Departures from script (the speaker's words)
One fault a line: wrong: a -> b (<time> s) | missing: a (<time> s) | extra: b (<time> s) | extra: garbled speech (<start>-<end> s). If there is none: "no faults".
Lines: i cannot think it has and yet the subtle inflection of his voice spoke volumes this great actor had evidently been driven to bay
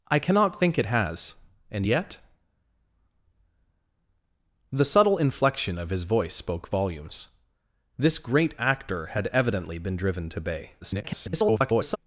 extra: garbled speech (10.8-12.0 s)